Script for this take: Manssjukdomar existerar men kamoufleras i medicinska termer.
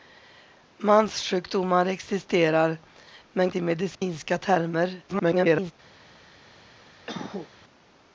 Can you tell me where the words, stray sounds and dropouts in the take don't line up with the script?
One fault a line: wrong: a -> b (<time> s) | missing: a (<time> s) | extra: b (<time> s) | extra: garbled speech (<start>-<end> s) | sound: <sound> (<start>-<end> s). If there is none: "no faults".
missing: kamoufleras (3.5 s)
sound: dropout (3.9-4.0 s)
extra: garbled speech (5.1-5.7 s)
sound: cough (7.1-7.5 s)